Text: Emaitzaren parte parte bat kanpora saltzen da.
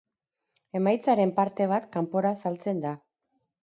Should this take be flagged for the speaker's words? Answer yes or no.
yes